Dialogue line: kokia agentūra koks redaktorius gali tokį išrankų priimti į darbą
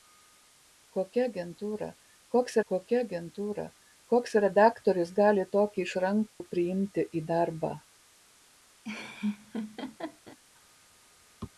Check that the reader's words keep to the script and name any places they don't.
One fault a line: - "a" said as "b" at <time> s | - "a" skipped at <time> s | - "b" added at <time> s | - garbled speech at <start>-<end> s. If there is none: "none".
- "kokia agentūra koks" added at 2.7 s